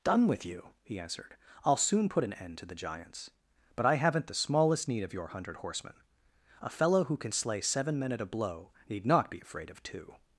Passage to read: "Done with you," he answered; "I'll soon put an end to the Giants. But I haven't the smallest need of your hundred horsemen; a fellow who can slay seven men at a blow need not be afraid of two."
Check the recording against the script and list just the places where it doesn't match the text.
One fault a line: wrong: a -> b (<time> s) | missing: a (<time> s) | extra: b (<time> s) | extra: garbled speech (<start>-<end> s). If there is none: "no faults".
no faults